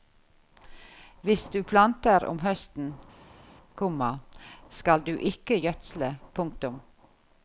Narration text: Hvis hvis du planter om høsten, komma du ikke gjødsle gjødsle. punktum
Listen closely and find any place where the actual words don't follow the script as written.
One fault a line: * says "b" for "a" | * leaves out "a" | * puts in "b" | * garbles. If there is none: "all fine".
* leaves out "hvis"
* puts in "skal"
* leaves out "gjødsle"